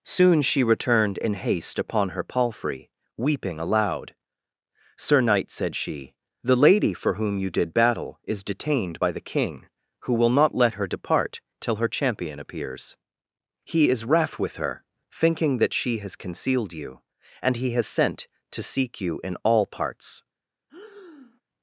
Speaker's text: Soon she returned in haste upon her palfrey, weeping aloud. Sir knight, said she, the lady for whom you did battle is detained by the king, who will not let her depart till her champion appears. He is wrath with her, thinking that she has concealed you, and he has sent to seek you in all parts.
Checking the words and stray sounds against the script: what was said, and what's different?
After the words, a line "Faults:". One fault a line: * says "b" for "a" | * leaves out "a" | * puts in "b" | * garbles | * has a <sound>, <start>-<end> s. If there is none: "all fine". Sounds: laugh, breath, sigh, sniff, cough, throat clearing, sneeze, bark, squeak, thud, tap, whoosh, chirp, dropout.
Soon she returned in haste upon her palfrey, weeping aloud. Sir knight, said she, the lady for whom you did battle is detained by the king, who will not let her depart till her champion appears. He is wrath with her, thinking that she has concealed you, and he has sent to seek you in all parts.
Faults:
* has a breath, 20.7-21.4 s